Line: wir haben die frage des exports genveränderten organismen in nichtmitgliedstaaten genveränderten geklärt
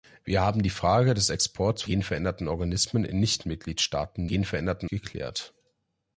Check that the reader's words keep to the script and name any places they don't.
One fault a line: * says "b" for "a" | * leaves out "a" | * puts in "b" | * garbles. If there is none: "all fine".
all fine